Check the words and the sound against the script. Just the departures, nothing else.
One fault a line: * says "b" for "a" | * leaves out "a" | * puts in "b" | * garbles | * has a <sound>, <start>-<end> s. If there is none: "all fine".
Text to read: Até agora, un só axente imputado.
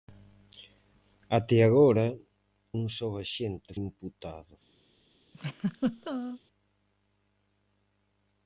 * has a laugh, 5.3-6.4 s